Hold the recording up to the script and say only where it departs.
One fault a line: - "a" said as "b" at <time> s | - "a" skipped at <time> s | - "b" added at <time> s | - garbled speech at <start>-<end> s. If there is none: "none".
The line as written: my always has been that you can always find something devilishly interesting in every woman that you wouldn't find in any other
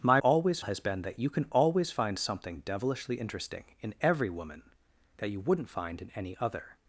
none